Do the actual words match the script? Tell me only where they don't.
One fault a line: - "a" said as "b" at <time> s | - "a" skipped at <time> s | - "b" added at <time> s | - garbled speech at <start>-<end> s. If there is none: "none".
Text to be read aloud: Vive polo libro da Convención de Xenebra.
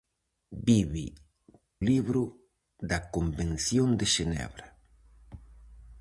- "polo" skipped at 1.1 s